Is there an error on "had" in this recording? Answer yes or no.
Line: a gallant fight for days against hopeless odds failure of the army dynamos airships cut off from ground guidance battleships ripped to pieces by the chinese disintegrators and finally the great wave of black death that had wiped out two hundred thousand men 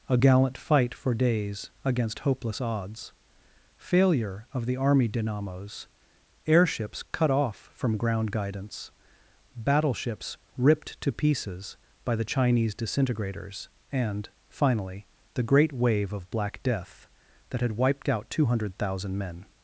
no